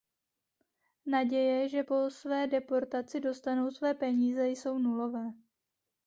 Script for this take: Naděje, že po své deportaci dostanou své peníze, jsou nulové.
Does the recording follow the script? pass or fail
pass